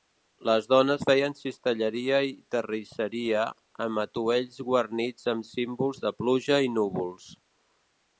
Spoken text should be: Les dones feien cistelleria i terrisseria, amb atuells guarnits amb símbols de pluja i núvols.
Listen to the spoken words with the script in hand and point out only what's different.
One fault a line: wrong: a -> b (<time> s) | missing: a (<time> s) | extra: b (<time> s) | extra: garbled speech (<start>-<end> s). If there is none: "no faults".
no faults